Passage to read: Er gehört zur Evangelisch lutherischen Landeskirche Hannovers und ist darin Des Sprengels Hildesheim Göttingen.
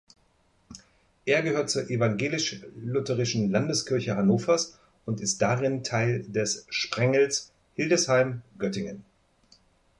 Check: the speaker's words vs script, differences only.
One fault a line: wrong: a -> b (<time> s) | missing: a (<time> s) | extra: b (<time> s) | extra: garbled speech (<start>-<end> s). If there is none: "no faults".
extra: Teil (5.8 s)